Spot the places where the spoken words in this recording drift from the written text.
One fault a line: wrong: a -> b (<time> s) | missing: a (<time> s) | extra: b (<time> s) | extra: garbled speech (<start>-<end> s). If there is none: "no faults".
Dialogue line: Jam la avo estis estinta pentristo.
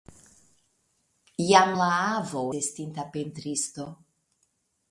missing: estis (2.4 s)